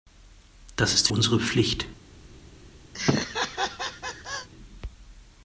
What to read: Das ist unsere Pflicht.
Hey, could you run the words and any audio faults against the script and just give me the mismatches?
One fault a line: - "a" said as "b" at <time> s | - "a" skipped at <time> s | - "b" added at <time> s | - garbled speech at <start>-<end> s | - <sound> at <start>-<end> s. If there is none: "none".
- laugh at 2.9-4.5 s